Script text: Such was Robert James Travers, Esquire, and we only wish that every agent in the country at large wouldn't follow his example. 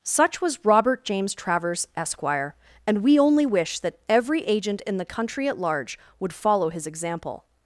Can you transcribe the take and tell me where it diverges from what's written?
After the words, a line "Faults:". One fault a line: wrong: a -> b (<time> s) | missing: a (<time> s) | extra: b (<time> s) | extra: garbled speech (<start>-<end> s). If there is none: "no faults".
Such was Robert James Travers, Esquire, and we only wish that every agent in the country at large would follow his example.
Faults:
wrong: wouldn't -> would (6.2 s)